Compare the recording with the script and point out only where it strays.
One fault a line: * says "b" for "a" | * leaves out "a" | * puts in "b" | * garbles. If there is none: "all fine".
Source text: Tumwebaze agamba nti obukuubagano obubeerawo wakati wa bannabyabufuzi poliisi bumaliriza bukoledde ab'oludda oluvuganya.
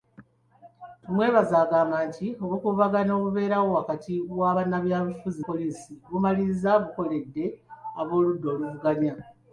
all fine